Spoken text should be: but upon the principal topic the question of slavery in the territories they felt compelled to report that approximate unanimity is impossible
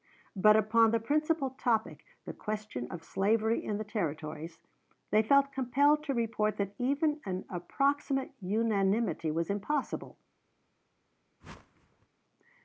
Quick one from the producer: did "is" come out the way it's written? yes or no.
no